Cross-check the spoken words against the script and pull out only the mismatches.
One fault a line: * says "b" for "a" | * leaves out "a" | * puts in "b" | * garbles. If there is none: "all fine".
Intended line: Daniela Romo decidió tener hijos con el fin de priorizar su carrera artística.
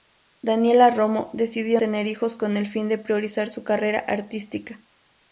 all fine